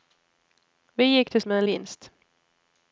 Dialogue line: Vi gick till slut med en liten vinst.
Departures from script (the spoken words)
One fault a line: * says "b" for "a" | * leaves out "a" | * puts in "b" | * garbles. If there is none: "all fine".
* leaves out "slut"
* leaves out "liten"